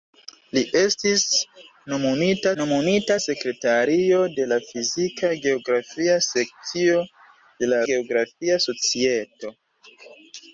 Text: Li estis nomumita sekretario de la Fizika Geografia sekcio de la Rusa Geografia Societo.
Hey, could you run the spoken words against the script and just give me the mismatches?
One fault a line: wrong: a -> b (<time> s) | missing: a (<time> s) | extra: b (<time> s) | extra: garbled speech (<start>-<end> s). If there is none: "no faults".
extra: nomumita (2.6 s)
missing: Rusa (7.8 s)